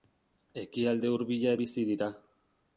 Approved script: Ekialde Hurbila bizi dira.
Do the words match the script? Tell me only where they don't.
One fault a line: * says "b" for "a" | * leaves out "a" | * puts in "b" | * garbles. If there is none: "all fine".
all fine